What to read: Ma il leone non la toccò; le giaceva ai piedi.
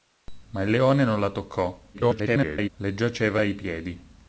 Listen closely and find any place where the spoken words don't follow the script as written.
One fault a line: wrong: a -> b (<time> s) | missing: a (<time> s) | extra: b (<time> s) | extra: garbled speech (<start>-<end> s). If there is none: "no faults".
extra: garbled speech (1.9-2.7 s)